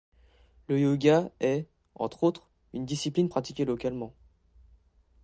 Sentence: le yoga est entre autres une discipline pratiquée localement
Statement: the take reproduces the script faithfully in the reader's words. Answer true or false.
true